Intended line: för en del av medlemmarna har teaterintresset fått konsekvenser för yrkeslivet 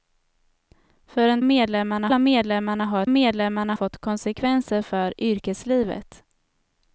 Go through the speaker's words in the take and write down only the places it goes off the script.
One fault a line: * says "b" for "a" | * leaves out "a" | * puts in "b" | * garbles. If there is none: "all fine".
* says "medlemmarna" for "del"
* says "medlemmarna" for "teaterintresset"